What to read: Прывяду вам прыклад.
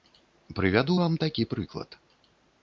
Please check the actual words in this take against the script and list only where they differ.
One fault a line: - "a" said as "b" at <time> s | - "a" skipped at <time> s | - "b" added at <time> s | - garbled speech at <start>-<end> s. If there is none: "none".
- "такі" added at 1.2 s